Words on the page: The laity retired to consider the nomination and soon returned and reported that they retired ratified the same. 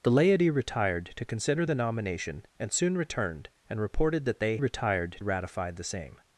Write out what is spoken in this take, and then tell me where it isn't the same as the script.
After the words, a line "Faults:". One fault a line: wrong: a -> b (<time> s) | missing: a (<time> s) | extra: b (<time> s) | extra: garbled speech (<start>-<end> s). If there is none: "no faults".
The laity retired to consider the nomination and soon returned and reported that they retired ratified the same.
Faults:
no faults